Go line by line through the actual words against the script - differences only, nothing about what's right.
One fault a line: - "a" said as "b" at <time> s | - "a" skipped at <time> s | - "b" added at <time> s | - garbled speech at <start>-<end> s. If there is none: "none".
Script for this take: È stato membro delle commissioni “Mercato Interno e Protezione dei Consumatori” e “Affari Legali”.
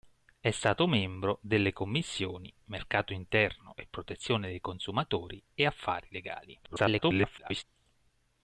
- garbled speech at 6.6-7.6 s